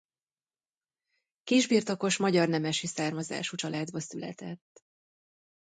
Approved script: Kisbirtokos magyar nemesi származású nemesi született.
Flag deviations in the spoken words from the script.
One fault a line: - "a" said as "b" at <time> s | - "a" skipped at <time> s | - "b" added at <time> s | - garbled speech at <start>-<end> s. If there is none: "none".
- "nemesi" said as "családba" at 3.5 s